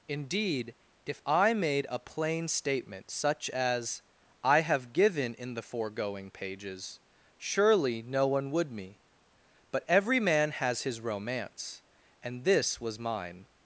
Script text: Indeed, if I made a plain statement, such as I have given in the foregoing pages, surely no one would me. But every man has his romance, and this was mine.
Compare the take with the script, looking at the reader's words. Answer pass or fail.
pass